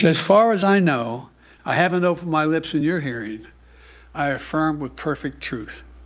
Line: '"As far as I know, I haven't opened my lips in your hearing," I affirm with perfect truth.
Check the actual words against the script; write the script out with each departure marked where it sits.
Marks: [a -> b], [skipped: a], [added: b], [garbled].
'"As far as I know, I haven't opened my lips in your hearing," I affirm with perfect truth.